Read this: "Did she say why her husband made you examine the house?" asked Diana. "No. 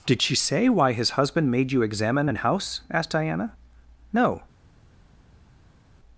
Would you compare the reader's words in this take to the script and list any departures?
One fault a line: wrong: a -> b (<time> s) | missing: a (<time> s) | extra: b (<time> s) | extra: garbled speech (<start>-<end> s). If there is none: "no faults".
wrong: her -> his (0.9 s)
wrong: the -> an (2.3 s)